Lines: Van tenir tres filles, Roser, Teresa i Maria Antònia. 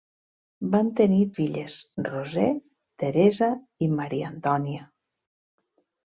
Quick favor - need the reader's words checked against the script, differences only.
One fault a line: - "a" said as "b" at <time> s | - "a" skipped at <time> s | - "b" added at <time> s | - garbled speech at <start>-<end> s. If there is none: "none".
- "tres" skipped at 1.2 s